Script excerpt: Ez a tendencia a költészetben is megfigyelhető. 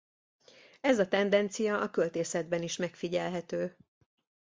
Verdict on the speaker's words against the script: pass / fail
pass